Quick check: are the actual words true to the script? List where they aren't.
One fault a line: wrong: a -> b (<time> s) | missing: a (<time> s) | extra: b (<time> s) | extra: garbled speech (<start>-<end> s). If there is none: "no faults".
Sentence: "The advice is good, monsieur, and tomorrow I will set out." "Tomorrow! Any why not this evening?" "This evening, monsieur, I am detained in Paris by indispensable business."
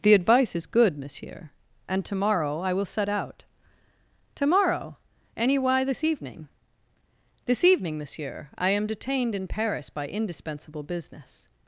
missing: not (5.8 s)